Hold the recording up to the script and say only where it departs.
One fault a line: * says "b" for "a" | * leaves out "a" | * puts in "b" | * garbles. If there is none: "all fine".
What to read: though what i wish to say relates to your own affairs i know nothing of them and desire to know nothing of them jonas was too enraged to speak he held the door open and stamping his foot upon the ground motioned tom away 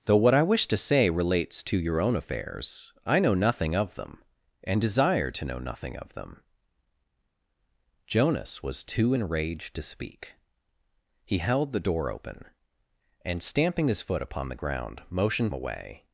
* leaves out "tom"